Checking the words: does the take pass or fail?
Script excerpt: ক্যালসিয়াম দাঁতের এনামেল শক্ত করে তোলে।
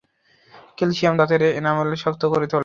pass